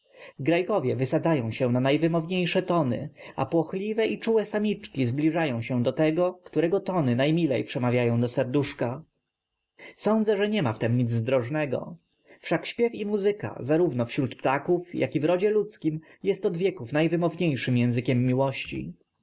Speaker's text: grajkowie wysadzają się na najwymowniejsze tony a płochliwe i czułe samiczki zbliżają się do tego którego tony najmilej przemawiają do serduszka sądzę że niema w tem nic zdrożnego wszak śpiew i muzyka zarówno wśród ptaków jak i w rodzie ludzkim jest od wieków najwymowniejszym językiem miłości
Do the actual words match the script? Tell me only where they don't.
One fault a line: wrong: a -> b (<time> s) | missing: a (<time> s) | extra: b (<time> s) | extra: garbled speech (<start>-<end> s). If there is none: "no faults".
no faults